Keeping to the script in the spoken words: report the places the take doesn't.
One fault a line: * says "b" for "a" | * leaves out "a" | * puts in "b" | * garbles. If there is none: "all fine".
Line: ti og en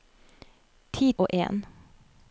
all fine